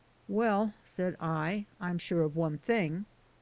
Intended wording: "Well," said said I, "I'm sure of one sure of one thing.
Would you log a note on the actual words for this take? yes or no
yes